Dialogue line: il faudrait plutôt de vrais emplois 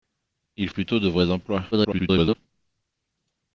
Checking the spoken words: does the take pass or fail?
fail